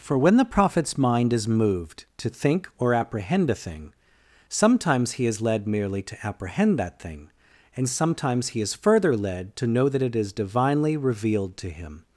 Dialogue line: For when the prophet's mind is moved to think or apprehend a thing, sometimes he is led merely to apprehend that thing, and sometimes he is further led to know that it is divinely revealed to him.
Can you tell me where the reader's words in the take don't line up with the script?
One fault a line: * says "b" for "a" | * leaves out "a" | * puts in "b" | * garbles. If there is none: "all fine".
all fine